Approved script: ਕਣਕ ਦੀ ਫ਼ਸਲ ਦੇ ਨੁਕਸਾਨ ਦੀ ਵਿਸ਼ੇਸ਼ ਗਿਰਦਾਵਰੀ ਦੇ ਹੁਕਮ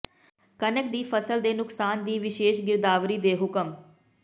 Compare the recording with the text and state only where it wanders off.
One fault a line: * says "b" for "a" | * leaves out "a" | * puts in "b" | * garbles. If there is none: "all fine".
all fine